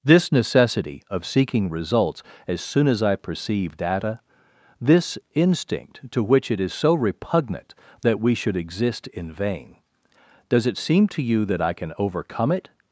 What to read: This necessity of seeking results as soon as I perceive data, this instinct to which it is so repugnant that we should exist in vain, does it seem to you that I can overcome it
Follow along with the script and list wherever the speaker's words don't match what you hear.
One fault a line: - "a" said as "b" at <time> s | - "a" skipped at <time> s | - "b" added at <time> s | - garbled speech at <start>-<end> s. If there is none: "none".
none